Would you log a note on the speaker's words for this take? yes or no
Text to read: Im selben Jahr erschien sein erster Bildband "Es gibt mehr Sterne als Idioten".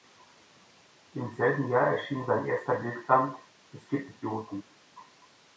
yes